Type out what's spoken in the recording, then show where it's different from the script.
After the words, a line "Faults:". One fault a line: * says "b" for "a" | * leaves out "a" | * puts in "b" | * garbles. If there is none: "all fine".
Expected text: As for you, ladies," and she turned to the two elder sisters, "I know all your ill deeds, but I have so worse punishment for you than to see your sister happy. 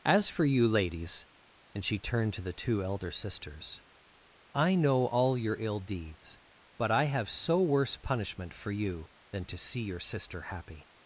As for you, ladies," and she turned to the two elder sisters, "I know all your ill deeds, but I have so worse punishment for you than to see your sister happy.
Faults:
all fine